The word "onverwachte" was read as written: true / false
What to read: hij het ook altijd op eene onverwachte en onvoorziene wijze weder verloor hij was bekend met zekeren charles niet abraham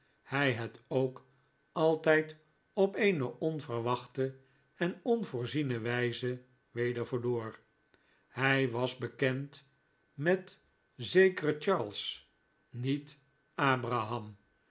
true